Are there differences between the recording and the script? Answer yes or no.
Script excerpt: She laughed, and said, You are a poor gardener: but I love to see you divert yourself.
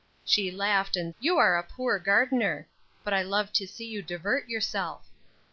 yes